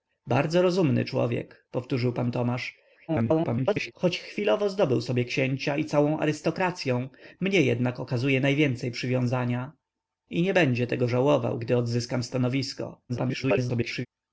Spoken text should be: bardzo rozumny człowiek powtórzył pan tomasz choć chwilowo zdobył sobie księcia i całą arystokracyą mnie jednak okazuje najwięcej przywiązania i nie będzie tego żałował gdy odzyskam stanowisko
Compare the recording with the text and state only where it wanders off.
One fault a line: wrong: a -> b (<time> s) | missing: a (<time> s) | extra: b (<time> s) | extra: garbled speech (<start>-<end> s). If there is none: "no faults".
extra: garbled speech (3.1-3.9 s)
extra: garbled speech (13.1-14.1 s)